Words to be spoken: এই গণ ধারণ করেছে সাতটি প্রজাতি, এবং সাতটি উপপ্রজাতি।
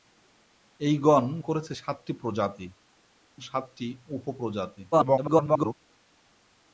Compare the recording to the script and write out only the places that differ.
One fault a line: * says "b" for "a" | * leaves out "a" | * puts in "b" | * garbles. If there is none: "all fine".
* leaves out "ধারণ"
* leaves out "এবং"
* garbles